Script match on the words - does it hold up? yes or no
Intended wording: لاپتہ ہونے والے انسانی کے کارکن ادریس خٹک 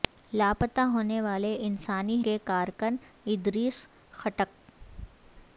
yes